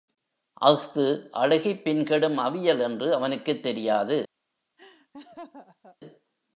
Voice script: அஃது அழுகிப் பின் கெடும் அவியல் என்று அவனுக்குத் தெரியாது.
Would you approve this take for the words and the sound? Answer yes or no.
no